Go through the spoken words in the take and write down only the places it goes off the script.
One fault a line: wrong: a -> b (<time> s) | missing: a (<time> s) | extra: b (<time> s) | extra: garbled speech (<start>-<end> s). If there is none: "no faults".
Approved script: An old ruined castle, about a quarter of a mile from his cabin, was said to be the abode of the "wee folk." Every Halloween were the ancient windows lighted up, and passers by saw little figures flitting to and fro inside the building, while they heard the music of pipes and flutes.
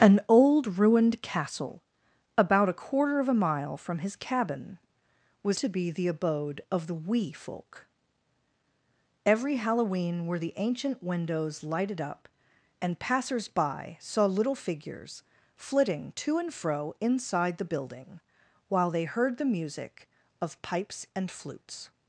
missing: said (5.6 s)